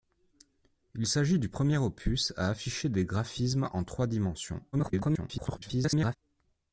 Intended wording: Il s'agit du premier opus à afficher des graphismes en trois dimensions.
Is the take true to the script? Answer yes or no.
no